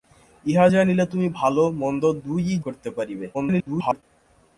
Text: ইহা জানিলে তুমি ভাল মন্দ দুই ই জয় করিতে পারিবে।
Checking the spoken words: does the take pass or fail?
fail